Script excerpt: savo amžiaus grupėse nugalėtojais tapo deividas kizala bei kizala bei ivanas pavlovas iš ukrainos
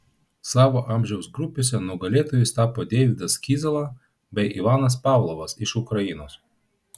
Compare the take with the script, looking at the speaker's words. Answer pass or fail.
fail